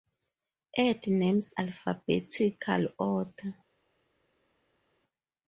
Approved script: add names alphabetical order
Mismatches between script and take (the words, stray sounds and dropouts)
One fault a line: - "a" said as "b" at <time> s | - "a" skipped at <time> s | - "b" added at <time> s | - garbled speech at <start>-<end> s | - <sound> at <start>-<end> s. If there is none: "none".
none